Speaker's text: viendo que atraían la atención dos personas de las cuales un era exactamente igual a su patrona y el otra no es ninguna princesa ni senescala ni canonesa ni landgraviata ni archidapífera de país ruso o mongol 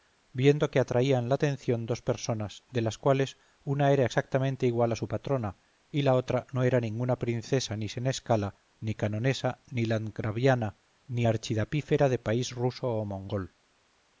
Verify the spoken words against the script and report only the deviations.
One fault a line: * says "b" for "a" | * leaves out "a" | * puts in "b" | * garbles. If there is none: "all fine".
* says "una" for "un"
* says "la" for "el"
* says "era" for "es"